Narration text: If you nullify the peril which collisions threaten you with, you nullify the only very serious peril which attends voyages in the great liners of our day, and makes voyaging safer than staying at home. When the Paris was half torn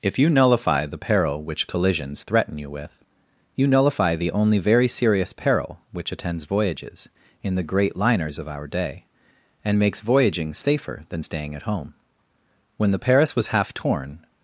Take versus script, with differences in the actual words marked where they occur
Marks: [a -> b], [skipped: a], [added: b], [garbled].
If you nullify the peril which collisions threaten you with, you nullify the only very serious peril which attends voyages in the great liners of our day, and makes voyaging safer than staying at home. When the Paris was half torn